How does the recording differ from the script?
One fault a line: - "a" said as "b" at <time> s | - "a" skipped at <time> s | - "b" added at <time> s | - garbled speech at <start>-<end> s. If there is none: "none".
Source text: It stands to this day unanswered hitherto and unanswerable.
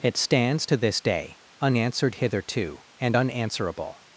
none